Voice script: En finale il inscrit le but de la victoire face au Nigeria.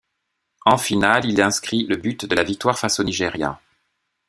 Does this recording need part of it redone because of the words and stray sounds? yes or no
no